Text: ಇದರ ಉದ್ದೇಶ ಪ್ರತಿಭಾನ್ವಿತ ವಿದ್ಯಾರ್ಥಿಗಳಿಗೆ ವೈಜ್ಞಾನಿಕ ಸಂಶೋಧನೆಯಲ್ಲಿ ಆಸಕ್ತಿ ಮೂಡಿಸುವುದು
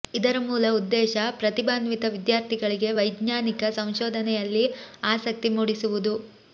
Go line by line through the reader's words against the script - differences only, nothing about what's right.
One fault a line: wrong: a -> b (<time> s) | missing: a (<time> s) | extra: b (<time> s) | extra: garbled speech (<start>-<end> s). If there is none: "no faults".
extra: ಮೂಲ (0.4 s)